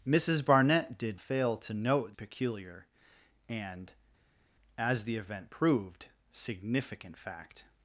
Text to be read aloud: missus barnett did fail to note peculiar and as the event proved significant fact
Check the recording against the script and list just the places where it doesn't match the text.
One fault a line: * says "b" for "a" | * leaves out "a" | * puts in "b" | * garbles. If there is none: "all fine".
all fine